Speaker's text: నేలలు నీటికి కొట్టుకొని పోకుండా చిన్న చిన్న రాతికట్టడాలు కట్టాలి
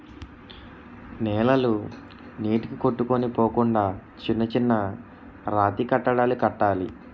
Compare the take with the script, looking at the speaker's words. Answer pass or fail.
pass